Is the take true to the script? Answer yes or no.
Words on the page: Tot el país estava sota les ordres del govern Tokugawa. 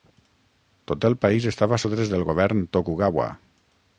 no